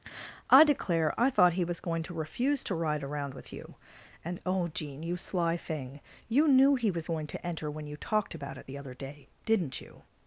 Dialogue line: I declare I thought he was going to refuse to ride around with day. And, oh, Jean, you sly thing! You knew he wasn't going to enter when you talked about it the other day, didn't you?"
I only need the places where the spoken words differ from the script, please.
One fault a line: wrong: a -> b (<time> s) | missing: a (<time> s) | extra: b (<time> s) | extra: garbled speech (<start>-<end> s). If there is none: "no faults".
wrong: day -> you (3.5 s)
wrong: wasn't -> was (6.9 s)